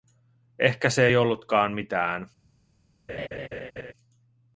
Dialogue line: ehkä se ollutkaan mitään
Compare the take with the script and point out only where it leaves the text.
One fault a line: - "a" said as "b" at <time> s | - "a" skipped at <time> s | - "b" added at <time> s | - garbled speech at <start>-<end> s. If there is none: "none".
- "ei" added at 1.0 s